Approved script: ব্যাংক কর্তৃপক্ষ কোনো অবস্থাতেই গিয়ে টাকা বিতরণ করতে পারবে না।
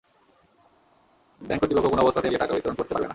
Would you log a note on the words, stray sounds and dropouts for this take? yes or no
no